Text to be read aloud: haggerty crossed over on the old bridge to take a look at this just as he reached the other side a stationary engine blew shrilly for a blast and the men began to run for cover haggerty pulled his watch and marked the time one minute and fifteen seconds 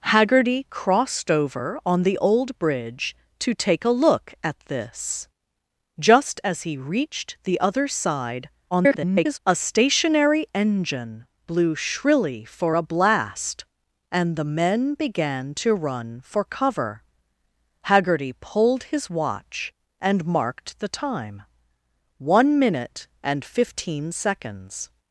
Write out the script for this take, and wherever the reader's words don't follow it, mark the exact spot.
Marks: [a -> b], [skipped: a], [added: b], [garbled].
haggerty crossed over on the old bridge to take a look at this just as he reached the other side [garbled] a stationary engine blew shrilly for a blast and the men began to run for cover haggerty pulled his watch and marked the time one minute and fifteen seconds